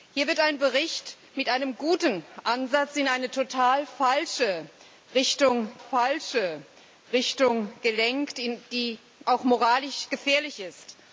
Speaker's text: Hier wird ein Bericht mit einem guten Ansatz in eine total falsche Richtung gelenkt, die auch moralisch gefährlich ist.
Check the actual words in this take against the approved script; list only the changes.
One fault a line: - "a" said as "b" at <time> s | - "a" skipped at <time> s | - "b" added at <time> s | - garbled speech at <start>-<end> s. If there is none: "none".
- "falsche Richtung" added at 5.8 s